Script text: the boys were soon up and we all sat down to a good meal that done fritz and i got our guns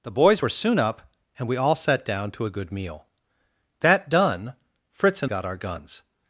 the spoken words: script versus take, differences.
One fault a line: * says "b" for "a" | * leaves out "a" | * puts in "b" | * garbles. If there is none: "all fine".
* leaves out "i"